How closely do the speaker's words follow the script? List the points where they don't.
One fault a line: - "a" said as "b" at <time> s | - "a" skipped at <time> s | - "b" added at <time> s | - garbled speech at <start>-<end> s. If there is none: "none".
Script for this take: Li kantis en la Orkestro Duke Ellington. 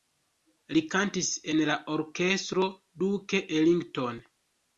none